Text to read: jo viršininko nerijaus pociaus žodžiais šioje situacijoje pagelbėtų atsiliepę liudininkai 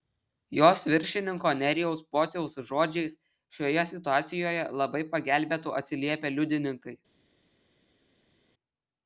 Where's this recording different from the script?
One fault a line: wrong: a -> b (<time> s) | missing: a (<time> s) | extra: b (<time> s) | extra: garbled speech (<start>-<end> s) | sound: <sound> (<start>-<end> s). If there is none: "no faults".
wrong: jo -> jos (0.6 s)
extra: labai (4.8 s)